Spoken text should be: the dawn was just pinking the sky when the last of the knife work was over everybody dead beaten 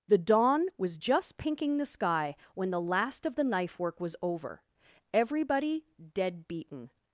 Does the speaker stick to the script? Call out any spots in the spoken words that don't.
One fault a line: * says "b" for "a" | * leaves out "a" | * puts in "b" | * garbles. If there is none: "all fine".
all fine